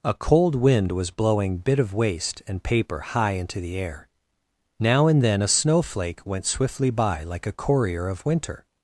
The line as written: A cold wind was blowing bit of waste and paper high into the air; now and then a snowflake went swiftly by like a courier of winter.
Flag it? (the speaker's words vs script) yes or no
no